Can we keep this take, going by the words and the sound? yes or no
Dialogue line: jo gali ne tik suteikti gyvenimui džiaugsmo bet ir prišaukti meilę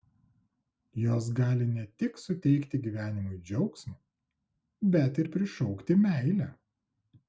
no